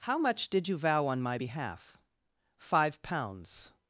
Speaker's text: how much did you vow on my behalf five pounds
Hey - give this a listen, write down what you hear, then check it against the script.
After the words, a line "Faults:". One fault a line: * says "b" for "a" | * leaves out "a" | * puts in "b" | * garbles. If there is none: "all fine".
how much did you vow on my behalf five pounds
Faults:
all fine